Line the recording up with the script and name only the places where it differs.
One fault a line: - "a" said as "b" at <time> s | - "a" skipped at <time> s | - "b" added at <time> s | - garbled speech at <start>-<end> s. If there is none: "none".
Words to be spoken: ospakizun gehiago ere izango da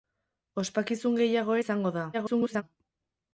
- "ere" skipped at 1.6 s
- garbled speech at 2.1-2.6 s